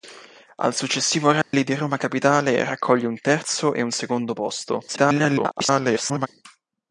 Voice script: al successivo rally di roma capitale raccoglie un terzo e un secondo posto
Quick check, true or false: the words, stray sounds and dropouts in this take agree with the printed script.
false